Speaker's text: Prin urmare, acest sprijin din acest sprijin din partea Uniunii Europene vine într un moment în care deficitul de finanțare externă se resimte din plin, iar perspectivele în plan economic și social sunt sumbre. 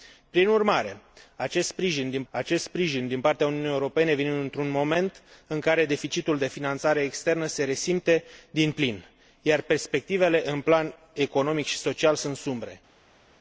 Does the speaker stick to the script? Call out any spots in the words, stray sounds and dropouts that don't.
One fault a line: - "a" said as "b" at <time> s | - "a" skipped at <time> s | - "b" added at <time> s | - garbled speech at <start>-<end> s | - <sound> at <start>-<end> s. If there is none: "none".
none